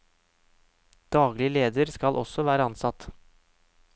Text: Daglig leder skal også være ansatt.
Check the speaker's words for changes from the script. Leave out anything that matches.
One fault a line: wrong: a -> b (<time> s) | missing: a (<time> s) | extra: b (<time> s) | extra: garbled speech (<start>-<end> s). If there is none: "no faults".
no faults